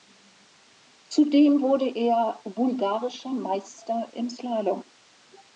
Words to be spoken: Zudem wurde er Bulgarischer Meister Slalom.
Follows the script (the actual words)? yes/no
no